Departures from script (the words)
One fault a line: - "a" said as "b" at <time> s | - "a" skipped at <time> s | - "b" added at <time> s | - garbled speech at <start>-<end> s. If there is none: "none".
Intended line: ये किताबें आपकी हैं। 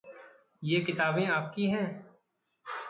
none